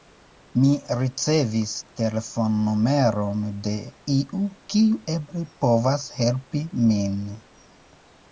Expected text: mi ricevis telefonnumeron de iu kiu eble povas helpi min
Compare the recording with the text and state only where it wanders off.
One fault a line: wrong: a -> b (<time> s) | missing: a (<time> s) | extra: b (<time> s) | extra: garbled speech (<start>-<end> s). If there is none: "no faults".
no faults